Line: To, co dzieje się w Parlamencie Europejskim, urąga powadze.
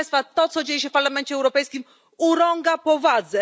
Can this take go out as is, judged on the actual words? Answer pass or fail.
pass